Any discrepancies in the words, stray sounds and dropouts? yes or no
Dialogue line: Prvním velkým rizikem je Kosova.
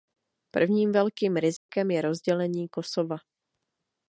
yes